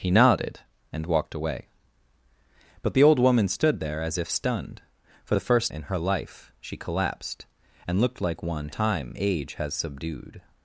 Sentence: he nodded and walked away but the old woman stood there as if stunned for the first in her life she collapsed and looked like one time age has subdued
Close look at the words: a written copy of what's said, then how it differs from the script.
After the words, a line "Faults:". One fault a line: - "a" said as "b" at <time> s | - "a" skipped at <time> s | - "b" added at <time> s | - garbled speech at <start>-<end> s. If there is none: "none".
he nodded and walked away but the old woman stood there as if stunned for the first in her life she collapsed and looked like one time age has subdued
Faults:
none